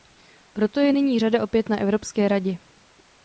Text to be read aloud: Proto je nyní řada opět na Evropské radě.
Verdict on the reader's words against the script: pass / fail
pass